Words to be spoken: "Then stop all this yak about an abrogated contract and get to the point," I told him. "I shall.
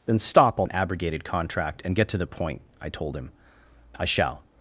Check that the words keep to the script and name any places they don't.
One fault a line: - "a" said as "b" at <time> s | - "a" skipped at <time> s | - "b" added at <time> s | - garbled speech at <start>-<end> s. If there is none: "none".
- "this yak about" skipped at 0.7 s